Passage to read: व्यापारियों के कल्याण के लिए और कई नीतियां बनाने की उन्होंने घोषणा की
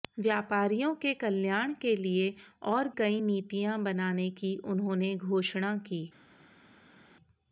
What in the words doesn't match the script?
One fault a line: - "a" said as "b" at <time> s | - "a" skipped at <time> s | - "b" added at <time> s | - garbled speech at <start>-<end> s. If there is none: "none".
none